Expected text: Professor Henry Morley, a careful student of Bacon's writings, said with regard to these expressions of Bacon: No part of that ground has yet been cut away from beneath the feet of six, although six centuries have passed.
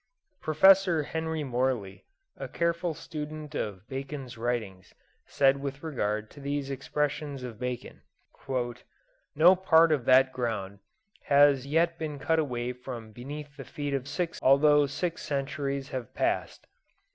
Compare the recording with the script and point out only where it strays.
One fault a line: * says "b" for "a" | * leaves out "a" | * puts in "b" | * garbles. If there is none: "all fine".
all fine